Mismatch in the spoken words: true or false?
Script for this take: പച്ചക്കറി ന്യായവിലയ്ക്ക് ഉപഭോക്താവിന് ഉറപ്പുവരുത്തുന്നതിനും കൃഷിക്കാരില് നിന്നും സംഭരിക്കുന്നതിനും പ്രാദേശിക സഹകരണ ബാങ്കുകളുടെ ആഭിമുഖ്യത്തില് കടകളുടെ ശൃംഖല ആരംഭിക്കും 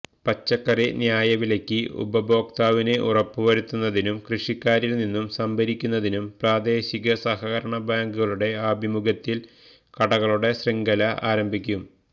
false